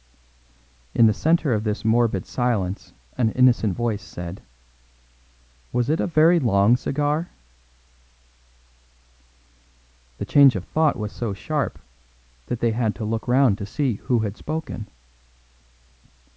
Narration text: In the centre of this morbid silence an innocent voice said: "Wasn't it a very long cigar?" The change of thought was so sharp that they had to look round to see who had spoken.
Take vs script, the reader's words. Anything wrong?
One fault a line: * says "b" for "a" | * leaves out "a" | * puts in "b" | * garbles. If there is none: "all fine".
* says "Was" for "Wasn't"